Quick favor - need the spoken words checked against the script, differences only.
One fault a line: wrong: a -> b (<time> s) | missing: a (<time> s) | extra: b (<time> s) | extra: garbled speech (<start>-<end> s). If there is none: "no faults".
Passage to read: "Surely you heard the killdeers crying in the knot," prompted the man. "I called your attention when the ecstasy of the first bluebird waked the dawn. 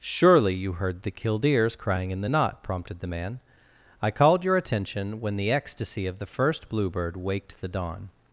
no faults